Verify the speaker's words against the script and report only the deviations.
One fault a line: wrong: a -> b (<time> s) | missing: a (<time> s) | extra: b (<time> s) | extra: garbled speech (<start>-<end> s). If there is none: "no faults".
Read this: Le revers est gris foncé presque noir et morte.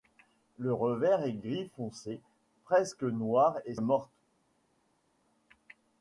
no faults